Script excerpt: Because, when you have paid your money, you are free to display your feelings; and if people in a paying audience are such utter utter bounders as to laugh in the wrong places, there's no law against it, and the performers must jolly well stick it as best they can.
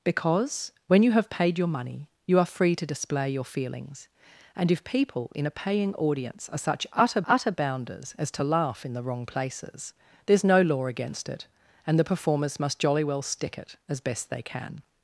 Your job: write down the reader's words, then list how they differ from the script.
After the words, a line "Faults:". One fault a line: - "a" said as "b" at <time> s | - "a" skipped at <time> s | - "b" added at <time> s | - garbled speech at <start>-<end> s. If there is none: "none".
Because, when you have paid your money, you are free to display your feelings; and if people in a paying audience are such utter utter bounders as to laugh in the wrong places, there's no law against it, and the performers must jolly well stick it as best they can.
Faults:
none